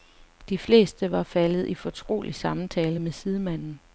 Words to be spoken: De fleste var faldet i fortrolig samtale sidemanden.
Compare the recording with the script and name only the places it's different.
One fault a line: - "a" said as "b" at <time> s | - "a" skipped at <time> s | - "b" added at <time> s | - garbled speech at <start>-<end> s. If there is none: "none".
- "med" added at 3.0 s